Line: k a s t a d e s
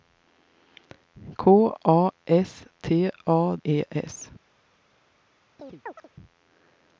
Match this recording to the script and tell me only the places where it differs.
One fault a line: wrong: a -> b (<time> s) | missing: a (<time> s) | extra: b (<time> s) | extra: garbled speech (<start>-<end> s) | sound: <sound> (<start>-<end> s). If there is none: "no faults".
missing: d (3.5 s)
sound: chirp (5.6-6.1 s)